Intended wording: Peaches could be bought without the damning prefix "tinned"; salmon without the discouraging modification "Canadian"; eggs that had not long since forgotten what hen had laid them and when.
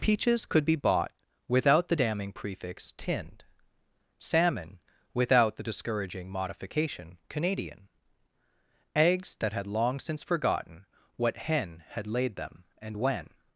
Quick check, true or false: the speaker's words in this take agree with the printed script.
false